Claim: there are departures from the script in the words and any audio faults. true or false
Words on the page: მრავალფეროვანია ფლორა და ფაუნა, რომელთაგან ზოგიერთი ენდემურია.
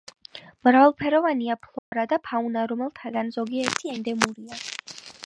true